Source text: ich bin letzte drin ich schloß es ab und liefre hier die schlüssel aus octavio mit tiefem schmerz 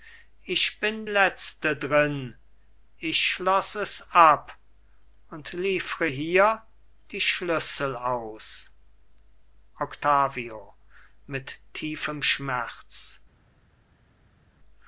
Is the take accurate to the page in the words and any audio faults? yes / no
yes